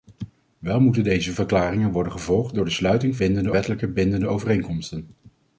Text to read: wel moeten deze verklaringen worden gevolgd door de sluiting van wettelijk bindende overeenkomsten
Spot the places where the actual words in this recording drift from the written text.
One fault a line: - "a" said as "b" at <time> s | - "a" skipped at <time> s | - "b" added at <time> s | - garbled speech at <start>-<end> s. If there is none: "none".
- "van" said as "bindende" at 3.2 s